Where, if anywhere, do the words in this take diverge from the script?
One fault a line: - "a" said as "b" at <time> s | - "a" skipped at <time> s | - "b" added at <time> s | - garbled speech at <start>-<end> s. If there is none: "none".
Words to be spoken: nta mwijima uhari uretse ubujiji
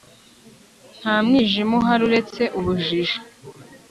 none